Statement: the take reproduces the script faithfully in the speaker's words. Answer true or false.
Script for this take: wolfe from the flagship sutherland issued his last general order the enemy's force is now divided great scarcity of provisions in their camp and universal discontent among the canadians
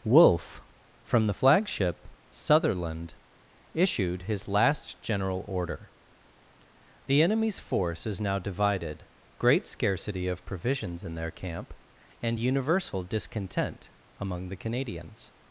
true